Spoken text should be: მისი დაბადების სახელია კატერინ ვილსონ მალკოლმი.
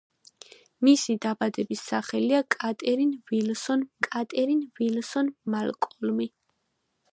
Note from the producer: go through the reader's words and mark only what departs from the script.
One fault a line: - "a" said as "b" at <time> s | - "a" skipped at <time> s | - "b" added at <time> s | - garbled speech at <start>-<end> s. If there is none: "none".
- "კატერინ ვილსონ" added at 4.1 s